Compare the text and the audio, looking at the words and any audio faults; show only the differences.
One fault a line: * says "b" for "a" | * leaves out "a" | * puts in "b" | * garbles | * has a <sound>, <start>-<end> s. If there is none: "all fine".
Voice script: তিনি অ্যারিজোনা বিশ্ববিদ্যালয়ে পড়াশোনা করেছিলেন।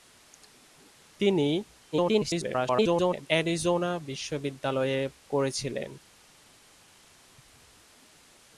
* garbles
* leaves out "পড়াশোনা"